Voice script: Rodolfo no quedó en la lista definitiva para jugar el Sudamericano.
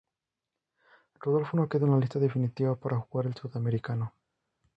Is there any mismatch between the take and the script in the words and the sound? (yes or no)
no